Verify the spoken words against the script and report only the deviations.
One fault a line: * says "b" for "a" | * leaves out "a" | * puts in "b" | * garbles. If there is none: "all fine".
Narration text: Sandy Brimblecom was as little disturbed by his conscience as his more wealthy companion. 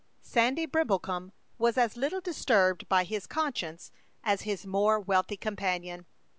all fine